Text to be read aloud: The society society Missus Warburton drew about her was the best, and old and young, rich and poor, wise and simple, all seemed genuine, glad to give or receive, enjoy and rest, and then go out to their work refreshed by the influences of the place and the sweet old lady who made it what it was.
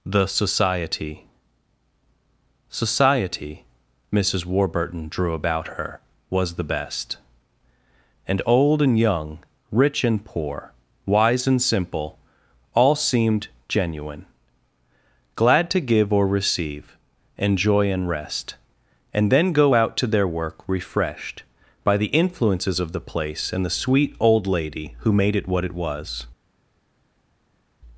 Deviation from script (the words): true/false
false